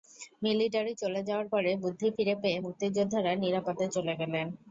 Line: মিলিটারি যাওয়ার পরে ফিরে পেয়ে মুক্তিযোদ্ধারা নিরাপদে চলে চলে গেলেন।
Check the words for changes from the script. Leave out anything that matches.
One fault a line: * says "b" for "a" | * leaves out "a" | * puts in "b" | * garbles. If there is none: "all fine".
* puts in "চলে"
* puts in "বুদ্ধি"
* leaves out "চলে"